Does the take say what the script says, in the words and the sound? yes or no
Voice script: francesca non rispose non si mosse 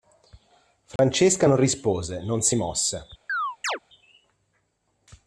no